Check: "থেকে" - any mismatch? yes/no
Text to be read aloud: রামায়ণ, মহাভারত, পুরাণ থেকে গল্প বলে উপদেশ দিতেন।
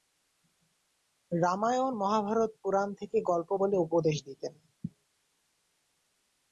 no